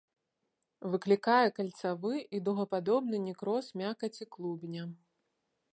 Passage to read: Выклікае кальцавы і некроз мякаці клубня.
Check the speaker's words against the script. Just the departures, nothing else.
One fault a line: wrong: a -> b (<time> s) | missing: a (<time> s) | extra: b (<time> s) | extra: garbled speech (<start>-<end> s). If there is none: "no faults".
extra: дугападобны (2.5 s)